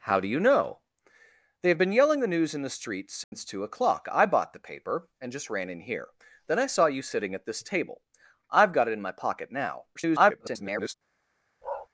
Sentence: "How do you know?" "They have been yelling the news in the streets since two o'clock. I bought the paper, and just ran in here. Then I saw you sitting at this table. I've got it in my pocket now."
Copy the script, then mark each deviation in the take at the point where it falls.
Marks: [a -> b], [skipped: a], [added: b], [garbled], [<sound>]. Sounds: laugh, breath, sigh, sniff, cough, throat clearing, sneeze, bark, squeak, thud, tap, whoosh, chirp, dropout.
"How do you know?" "They have been yelling the news in the streets since [dropout] two o'clock. I bought the paper, and just ran in here. Then I saw you sitting at this table. I've got it in my pocket now." [garbled] [bark]